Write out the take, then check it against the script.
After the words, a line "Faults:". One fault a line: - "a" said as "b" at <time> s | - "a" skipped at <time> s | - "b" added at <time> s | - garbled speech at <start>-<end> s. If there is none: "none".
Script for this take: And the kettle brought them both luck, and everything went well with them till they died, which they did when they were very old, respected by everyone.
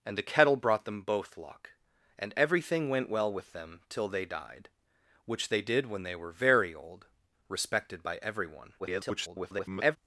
And the kettle brought them both luck, and everything went well with them till they died, which they did when they were very old, respected by everyone. [garbled]
Faults:
- garbled speech at 8.8-10.0 s